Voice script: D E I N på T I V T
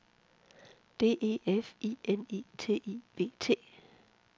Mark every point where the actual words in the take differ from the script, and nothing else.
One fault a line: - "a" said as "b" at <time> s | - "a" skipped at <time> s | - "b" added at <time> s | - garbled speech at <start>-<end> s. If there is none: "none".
- "F" added at 1.4 s
- "på" said as "I" at 2.3 s